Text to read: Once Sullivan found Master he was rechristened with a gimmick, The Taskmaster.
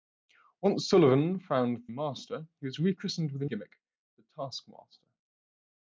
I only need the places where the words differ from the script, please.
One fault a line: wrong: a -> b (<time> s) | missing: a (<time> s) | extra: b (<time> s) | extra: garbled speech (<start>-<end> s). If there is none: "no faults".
no faults